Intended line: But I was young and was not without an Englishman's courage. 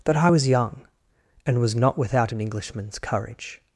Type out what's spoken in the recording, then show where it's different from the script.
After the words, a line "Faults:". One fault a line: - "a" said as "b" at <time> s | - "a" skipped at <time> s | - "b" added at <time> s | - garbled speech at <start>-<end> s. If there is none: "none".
That I was young and was not without an Englishman's courage.
Faults:
- "But" said as "That" at 0.1 s